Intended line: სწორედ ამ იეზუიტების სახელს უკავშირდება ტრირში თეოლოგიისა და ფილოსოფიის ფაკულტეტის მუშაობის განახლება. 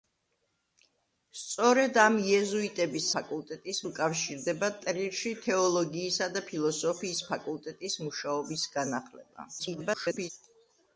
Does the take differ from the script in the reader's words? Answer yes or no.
yes